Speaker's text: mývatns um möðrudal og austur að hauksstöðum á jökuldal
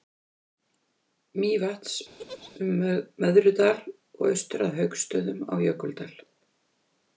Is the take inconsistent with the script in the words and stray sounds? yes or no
yes